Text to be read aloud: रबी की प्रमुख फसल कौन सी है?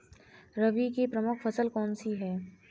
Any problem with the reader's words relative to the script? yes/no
no